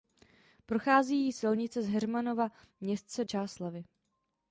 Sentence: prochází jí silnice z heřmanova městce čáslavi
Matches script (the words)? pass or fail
pass